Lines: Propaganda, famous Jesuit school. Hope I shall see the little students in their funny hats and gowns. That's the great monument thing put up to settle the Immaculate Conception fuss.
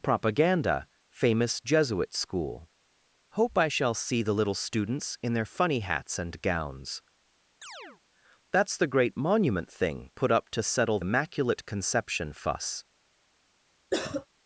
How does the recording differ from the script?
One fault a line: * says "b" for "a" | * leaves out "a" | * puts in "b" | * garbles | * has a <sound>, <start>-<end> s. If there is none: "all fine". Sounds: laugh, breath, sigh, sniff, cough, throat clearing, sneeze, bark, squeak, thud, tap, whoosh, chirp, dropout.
* has a chirp, 7.6-8.0 s
* leaves out "the"
* has a cough, 13.9-14.3 s